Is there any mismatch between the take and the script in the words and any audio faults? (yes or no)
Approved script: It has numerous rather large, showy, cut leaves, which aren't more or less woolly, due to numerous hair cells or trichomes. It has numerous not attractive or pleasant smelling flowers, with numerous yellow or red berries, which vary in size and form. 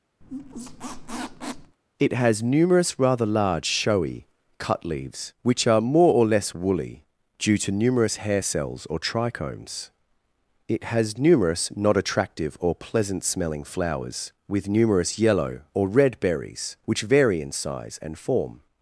yes